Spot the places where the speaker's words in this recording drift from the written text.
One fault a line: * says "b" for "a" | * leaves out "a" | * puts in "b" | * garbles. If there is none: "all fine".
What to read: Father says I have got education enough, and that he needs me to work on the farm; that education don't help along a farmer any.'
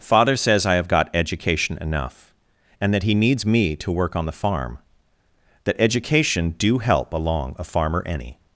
* says "do" for "don't"